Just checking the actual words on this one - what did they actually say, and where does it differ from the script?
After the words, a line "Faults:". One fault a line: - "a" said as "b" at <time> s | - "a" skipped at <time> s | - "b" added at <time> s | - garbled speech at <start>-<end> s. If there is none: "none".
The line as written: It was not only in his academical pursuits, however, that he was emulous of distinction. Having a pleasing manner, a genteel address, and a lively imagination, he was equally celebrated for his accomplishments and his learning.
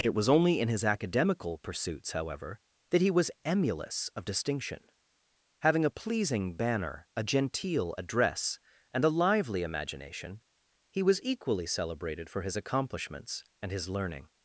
It was only in his academical pursuits, however, that he was emulous of distinction. Having a pleasing banner, a genteel address, and a lively imagination, he was equally celebrated for his accomplishments and his learning.
Faults:
- "not" skipped at 0.3 s
- "manner" said as "banner" at 6.5 s